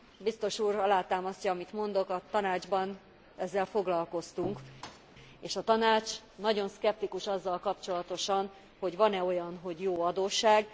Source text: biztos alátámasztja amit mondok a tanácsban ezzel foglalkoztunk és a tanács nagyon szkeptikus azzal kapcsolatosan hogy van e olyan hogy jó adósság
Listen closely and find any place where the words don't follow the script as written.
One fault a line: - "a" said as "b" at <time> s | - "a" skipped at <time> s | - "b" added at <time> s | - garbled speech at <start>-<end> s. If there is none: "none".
- "úr" added at 0.6 s